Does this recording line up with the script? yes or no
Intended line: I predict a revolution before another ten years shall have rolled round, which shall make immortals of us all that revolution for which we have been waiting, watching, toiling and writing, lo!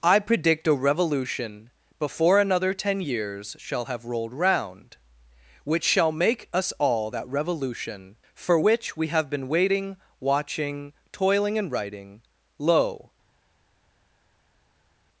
no